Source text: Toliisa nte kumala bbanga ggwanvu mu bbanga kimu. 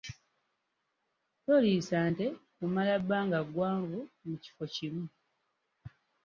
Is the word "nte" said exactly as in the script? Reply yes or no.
yes